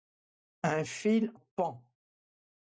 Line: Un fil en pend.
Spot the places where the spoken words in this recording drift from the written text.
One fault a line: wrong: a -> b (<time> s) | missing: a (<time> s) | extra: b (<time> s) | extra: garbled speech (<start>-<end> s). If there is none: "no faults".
missing: en (1.3 s)